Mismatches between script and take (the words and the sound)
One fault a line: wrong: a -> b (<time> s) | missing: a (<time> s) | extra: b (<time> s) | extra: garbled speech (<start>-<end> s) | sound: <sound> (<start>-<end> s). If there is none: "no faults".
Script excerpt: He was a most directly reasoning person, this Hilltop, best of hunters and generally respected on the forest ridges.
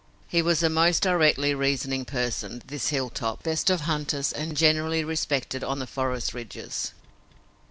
no faults